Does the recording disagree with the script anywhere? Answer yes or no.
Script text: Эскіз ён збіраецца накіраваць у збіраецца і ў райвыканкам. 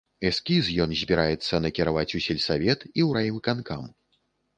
yes